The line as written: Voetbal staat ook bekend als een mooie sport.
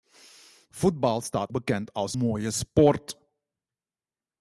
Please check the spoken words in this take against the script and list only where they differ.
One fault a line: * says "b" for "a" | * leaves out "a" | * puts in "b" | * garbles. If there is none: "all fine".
* leaves out "ook"
* leaves out "een"